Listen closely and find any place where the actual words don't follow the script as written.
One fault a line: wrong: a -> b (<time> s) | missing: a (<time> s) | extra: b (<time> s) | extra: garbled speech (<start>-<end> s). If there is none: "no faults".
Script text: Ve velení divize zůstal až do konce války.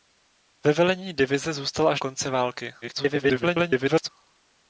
missing: do (2.0 s)
extra: garbled speech (2.8-4.1 s)